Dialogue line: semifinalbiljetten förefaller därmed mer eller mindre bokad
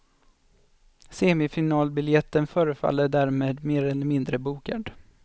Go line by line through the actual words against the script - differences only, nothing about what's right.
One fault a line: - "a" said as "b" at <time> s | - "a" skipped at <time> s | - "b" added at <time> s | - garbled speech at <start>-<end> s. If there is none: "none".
none